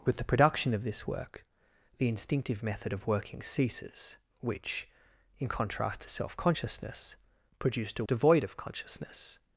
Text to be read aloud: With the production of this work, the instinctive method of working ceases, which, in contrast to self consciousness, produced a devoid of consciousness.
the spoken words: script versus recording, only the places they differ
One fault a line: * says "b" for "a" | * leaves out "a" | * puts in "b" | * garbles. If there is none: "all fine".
all fine